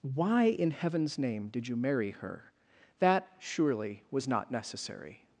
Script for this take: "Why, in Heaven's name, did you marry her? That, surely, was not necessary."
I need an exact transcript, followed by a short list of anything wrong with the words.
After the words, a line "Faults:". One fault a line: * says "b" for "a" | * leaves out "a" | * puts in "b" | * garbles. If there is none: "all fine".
"Why, in Heaven's name, did you marry her? That, surely, was not necessary."
Faults:
all fine